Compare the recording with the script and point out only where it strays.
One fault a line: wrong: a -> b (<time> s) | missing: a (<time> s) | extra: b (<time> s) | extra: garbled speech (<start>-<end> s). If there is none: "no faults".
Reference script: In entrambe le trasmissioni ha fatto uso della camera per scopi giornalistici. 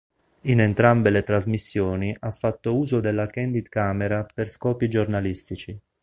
extra: candid (3.3 s)